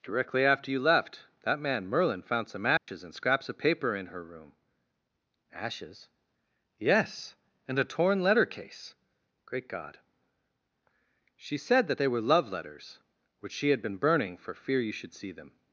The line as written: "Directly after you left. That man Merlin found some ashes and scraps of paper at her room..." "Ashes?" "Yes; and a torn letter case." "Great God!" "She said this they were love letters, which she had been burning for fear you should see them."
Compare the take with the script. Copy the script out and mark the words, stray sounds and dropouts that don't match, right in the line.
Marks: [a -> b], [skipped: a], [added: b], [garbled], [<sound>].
"Directly after you left. That man Merlin found some ashes [dropout] and scraps of paper [at -> in] her room..." "Ashes?" "Yes; and a torn letter case." "Great God!" "She said [this -> that] they were love letters, which she had been burning for fear you should see them."